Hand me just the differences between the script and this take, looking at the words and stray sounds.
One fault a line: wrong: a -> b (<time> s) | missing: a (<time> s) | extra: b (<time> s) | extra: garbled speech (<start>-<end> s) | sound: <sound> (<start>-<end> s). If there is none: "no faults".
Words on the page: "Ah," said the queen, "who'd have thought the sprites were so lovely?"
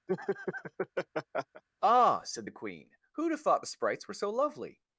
sound: laugh (0.1-1.6 s)